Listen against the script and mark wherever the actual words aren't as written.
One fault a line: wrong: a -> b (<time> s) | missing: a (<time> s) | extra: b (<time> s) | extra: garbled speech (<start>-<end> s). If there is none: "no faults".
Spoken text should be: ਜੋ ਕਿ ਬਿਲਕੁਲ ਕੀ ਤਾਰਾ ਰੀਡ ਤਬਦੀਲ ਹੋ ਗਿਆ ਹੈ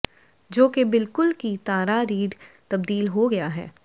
no faults